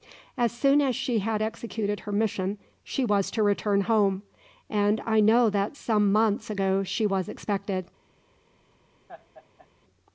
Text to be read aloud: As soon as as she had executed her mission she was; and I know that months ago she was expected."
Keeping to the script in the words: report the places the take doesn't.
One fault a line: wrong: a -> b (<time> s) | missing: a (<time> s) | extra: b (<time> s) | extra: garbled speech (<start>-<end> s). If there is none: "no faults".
missing: as (0.9 s)
extra: to return home (3.3 s)
extra: some (5.7 s)